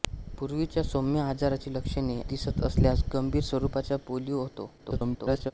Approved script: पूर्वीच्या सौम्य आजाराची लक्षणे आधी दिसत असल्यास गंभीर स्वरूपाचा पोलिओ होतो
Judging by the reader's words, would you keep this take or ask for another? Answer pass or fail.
fail